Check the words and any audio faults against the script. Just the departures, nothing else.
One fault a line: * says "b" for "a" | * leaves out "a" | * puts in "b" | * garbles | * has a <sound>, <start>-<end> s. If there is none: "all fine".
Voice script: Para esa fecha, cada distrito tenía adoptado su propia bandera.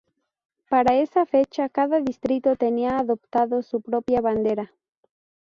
all fine